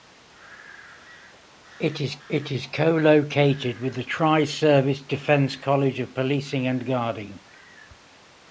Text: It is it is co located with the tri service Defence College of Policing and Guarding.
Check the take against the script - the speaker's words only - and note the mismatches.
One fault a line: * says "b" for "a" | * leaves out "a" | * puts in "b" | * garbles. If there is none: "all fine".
all fine